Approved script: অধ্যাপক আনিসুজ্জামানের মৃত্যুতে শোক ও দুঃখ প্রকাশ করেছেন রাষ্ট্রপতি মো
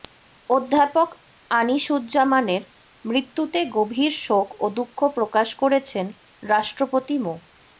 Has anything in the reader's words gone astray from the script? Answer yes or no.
yes